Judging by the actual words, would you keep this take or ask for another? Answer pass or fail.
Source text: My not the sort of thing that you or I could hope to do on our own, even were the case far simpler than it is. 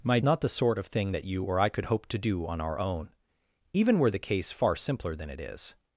pass